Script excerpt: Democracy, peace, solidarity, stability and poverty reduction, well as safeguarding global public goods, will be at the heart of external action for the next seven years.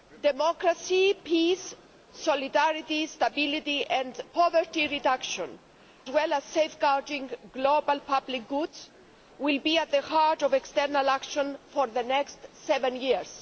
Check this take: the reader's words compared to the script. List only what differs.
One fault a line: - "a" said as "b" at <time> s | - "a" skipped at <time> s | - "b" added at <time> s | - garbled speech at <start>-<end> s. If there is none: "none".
none